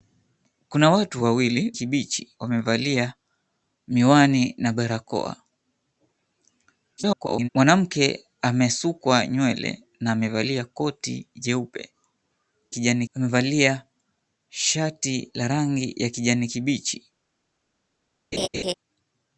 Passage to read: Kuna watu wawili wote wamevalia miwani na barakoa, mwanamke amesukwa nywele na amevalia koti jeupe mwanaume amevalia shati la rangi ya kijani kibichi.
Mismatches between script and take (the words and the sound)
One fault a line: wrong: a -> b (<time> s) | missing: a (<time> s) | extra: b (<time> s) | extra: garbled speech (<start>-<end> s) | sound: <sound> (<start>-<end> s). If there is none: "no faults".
wrong: wote -> kibichi (1.7 s)
extra: garbled speech (7.0-7.5 s)
wrong: mwanaume -> kijani (12.7 s)
sound: laugh (18.3-18.7 s)